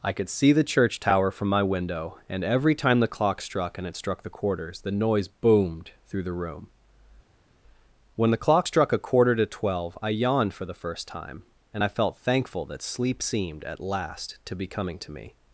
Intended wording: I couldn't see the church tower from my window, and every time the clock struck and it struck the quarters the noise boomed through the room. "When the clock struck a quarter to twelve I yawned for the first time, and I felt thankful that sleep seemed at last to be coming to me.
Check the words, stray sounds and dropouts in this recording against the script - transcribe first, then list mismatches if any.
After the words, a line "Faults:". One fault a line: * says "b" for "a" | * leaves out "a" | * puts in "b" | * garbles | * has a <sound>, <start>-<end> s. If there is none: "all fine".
I could see the church tower from my window, and every time the clock struck and it struck the quarters the noise boomed through the room. "When the clock struck a quarter to twelve I yawned for the first time, and I felt thankful that sleep seemed at last to be coming to me.
Faults:
* says "could" for "couldn't"